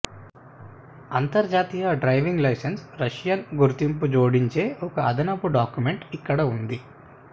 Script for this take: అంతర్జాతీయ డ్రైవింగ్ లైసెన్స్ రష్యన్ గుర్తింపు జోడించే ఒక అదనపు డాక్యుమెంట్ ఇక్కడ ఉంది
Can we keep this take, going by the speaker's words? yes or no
yes